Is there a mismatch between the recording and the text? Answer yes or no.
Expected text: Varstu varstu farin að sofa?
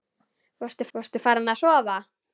no